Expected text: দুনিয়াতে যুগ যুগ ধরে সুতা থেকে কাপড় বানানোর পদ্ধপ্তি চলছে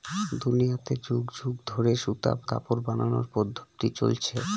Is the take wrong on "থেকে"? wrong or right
wrong